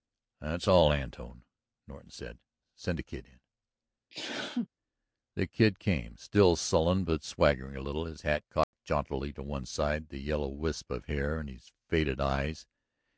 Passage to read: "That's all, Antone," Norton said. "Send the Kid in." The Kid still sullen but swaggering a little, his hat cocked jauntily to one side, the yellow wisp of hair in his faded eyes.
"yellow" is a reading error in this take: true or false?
false